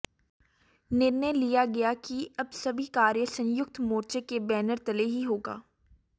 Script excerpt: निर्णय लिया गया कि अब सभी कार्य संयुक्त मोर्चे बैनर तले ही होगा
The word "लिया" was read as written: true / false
true